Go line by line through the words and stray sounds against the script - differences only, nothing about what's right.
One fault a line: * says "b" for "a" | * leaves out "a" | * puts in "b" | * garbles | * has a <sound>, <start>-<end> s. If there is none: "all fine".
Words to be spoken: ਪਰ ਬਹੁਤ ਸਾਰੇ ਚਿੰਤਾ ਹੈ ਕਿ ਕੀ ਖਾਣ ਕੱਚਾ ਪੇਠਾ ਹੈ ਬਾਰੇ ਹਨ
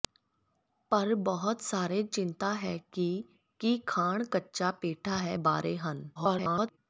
* garbles